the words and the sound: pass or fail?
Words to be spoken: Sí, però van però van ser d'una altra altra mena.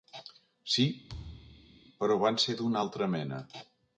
fail